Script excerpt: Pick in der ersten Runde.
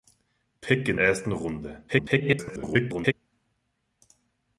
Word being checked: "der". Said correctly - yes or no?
no